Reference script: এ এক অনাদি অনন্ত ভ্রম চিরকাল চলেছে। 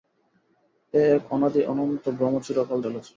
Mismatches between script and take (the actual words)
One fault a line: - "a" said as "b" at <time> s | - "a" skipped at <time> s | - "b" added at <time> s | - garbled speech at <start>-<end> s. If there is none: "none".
none